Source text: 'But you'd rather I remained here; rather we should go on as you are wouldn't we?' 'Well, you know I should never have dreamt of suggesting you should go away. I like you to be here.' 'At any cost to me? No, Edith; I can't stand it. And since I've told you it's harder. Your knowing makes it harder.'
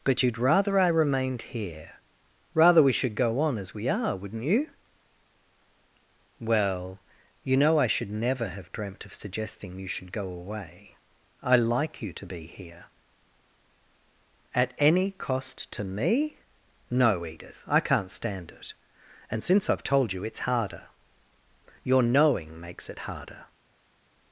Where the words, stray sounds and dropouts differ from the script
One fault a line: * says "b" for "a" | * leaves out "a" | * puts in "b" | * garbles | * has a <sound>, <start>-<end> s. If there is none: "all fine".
* says "we" for "you"
* says "you" for "we"